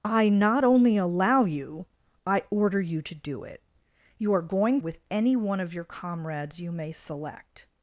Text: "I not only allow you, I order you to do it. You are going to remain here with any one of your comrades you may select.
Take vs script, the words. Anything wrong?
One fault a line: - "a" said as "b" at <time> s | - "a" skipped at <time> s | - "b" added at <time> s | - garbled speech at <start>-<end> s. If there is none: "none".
- "to remain here" skipped at 4.8 s